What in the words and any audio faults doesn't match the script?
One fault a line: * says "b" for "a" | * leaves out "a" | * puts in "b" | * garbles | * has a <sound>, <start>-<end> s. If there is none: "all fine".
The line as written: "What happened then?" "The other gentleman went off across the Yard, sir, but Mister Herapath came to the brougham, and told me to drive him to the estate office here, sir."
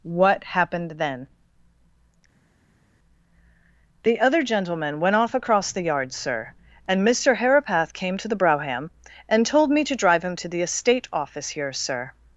* says "and" for "but"